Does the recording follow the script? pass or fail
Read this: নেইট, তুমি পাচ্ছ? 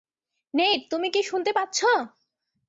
fail